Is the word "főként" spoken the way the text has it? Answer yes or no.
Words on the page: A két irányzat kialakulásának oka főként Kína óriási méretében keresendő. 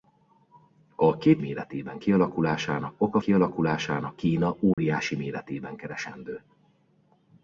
no